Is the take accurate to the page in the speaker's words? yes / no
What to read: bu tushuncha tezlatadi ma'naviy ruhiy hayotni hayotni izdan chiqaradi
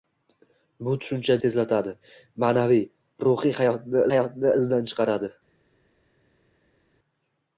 yes